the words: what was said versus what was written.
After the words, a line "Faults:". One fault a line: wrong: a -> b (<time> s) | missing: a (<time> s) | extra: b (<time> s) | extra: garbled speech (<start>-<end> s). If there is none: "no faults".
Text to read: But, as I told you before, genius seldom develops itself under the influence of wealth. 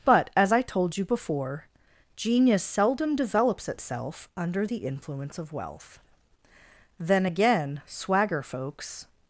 But, as I told you before, genius seldom develops itself under the influence of wealth. Then again 'swagger' folks
Faults:
extra: Then again swagger folks (7.0 s)